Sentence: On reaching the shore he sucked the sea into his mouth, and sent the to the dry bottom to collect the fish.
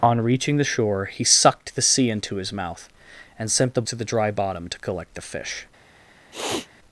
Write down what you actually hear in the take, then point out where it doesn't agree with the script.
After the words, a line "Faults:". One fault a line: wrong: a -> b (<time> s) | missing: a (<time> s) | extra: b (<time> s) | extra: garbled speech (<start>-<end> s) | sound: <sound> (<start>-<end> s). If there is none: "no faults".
On reaching the shore he sucked the sea into his mouth, and sent the to the dry bottom to collect the fish.
Faults:
sound: sniff (6.3-6.7 s)